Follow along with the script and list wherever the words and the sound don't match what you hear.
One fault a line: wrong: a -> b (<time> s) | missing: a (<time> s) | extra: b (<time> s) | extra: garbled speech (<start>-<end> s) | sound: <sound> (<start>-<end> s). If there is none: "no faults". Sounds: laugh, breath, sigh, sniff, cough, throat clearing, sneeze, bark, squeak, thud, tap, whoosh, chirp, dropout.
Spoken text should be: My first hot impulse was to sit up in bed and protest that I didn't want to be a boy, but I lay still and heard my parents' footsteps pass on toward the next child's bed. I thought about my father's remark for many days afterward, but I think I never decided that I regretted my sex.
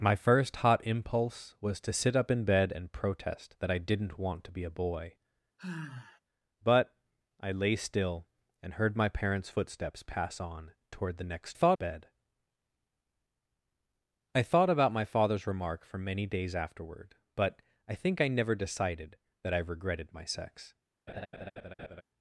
sound: sigh (5.6-6.2 s)
wrong: child's -> thought (11.5 s)
sound: laugh (21.1-22.0 s)